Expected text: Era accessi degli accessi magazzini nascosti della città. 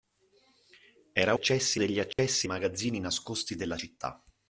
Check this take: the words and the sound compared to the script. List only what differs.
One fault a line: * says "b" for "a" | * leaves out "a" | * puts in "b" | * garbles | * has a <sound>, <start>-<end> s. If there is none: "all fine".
* has a dropout, 2.1-2.2 s